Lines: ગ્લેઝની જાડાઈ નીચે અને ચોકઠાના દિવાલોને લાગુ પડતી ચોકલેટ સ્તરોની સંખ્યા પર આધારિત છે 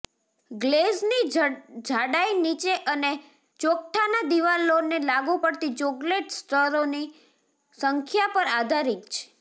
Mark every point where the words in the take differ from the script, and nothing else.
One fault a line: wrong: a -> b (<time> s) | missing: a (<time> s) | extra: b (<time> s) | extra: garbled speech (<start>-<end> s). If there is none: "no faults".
no faults